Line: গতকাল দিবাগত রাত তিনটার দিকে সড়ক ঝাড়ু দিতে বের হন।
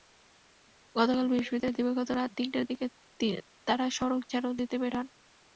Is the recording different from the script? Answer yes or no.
yes